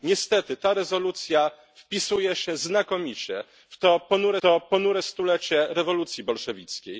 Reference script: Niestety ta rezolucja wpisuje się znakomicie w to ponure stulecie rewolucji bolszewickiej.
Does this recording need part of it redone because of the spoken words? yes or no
yes